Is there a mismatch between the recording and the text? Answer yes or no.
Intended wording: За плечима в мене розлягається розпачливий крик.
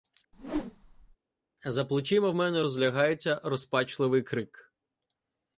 no